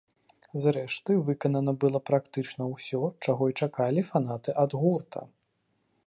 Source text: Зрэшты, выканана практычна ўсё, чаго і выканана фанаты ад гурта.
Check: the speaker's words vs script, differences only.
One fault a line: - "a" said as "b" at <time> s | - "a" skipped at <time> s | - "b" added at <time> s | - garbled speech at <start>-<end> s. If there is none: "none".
- "было" added at 1.8 s
- "выканана" said as "чакалі" at 3.6 s